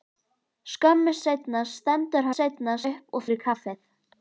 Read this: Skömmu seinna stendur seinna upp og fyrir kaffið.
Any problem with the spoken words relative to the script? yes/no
no